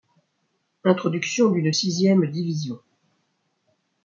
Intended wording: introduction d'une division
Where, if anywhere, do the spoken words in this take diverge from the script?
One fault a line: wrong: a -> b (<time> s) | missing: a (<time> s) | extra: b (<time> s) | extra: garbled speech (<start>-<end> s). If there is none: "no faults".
extra: sixième (1.7 s)